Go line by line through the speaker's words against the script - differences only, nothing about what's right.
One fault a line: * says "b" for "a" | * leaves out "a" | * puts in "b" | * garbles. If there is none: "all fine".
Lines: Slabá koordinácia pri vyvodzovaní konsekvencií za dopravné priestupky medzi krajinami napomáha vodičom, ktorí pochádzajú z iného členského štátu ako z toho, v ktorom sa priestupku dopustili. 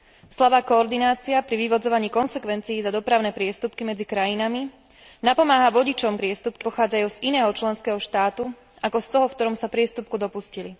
* says "priestupky" for "ktorí"